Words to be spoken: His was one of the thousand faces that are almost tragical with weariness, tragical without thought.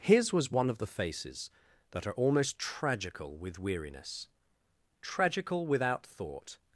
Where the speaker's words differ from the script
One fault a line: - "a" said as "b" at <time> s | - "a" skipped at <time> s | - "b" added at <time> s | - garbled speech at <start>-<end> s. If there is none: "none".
- "thousand" skipped at 0.9 s